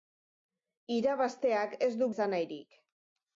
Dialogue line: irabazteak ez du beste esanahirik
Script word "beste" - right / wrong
wrong